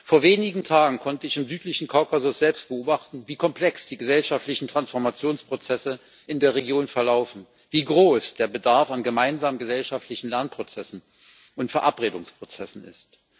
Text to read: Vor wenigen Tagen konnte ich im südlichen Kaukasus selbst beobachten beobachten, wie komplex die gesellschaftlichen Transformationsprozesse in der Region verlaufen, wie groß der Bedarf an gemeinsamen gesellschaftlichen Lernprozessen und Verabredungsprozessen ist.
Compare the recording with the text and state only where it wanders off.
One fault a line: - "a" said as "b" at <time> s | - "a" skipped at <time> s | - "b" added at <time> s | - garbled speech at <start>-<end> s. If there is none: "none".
- "beobachten" skipped at 3.2 s